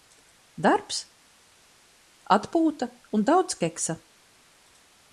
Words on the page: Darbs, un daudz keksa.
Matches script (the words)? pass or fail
fail